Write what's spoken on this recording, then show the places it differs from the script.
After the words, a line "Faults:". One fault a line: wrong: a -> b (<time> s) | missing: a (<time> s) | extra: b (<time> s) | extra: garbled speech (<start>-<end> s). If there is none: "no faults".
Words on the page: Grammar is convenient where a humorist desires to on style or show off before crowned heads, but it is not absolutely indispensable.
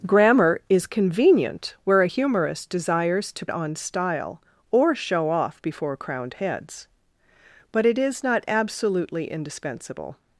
Grammar is convenient where a humorist desires to on style or show off before crowned heads, but it is not absolutely indispensable.
Faults:
no faults